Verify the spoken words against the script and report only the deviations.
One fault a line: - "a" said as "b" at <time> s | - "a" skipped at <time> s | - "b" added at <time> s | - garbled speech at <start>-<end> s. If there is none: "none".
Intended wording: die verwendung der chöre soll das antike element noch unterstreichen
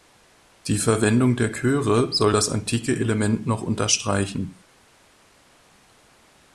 none